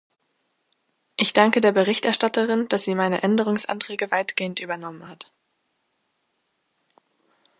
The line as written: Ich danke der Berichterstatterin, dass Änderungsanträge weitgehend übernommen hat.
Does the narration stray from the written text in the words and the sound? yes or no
yes